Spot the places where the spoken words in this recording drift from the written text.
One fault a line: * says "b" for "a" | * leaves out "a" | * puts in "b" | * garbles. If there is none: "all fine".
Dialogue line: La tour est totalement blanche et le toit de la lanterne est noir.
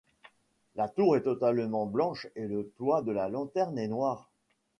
all fine